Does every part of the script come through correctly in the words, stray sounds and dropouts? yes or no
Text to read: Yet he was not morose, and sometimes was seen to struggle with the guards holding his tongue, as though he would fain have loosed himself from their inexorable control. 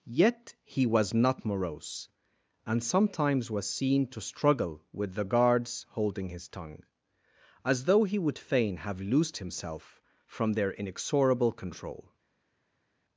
yes